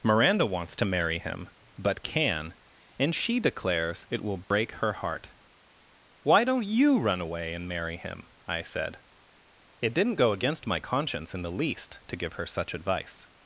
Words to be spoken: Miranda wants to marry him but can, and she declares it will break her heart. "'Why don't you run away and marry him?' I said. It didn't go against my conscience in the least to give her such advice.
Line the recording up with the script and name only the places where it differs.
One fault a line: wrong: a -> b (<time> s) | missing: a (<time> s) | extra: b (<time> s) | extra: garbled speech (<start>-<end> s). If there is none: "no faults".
no faults